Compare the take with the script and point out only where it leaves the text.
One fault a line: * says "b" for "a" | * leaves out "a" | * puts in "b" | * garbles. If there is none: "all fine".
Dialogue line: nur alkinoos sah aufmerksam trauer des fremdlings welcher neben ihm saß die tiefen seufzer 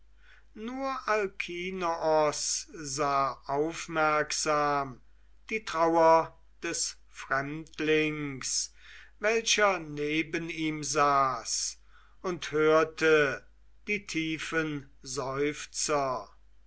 * puts in "die"
* puts in "und hörte"